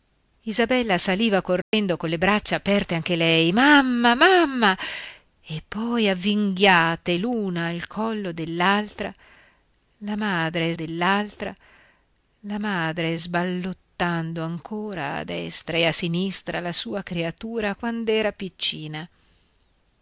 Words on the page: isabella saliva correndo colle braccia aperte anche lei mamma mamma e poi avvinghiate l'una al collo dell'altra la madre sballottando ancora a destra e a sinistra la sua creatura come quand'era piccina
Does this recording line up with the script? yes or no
no